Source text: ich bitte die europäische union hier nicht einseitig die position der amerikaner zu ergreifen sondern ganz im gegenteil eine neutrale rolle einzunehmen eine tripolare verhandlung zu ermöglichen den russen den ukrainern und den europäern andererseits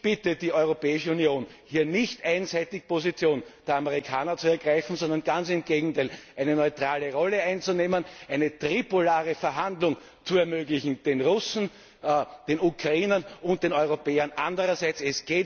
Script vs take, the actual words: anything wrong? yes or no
no